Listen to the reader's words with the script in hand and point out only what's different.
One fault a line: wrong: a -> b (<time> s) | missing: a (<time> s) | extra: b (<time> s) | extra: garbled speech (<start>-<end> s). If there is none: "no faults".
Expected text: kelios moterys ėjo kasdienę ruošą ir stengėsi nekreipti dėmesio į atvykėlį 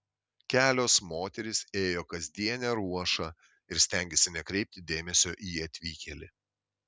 no faults